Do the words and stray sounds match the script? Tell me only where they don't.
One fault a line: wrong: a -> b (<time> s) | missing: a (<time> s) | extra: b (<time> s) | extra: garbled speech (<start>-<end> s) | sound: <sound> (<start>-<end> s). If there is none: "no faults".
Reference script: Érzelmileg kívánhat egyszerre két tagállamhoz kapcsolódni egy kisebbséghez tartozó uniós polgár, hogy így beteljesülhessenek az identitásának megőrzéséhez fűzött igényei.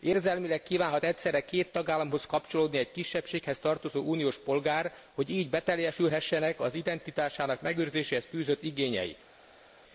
no faults